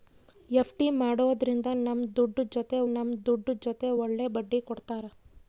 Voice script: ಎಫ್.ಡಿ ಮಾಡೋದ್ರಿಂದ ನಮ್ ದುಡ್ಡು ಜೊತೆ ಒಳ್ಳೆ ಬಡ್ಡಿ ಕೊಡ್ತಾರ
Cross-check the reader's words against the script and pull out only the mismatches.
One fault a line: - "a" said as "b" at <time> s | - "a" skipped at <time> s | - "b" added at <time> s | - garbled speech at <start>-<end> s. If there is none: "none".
- "ನಮ್ ದುಡ್ಡು ಜೊತೆ" added at 2.9 s